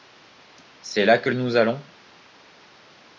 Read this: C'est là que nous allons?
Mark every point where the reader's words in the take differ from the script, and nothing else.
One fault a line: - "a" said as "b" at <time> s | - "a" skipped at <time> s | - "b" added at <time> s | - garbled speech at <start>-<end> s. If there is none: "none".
none